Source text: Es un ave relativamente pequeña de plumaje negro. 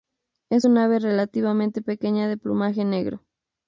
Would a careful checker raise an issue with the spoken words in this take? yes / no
no